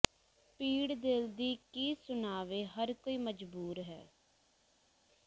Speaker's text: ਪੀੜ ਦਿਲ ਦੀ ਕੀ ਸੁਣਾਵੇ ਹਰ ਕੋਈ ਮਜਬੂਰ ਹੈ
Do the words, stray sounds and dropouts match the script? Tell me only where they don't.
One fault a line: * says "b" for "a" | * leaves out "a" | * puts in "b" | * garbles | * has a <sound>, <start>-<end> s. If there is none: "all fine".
all fine